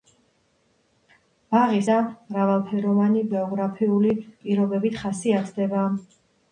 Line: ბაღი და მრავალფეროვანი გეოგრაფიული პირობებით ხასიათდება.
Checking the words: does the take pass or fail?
pass